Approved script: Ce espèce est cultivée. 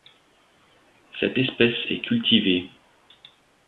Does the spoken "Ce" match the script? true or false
false